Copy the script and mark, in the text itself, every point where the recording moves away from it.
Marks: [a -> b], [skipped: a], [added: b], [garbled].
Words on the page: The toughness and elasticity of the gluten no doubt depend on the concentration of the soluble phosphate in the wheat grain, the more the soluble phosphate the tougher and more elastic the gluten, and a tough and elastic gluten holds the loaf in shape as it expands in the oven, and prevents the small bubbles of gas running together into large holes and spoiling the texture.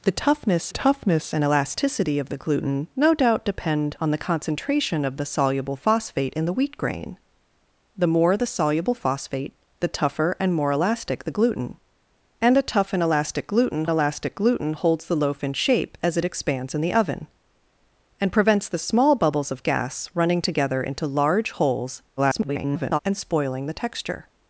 The toughness [added: toughness] and elasticity of the gluten no doubt depend on the concentration of the soluble phosphate in the wheat grain, the more the soluble phosphate the tougher and more elastic the gluten, and a tough and elastic gluten [added: elastic gluten] holds the loaf in shape as it expands in the oven, and prevents the small bubbles of gas running together into large holes [garbled] and spoiling the texture.